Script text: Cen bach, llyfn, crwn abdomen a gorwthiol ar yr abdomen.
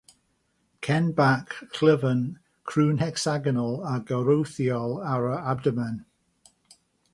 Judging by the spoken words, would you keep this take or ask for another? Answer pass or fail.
fail